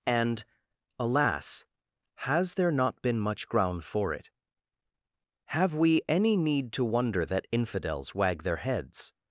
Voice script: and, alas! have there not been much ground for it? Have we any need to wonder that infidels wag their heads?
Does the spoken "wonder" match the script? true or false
true